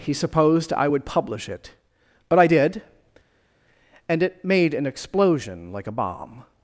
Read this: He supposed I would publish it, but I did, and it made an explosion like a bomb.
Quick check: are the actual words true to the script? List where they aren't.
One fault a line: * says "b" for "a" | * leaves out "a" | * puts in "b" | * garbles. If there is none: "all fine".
all fine